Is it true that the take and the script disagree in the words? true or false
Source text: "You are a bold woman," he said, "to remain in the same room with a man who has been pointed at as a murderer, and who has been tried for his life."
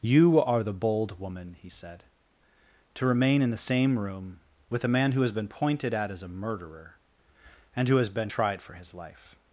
true